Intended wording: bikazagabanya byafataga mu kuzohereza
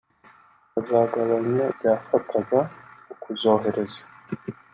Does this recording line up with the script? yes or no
yes